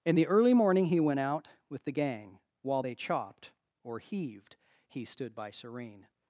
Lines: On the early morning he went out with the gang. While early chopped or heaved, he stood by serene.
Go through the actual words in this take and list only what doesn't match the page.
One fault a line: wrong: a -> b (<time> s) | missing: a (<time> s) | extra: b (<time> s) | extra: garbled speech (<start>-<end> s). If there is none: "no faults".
wrong: On -> In (0.0 s)
wrong: early -> they (2.8 s)